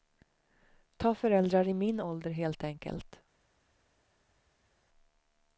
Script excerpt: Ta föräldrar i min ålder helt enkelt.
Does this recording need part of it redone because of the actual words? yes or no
no